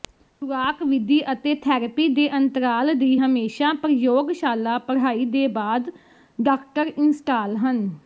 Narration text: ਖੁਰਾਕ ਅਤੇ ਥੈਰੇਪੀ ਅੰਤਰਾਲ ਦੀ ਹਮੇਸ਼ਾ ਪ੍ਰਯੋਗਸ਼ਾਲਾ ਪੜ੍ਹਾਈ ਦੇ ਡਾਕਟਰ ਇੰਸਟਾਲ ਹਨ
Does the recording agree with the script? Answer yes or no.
no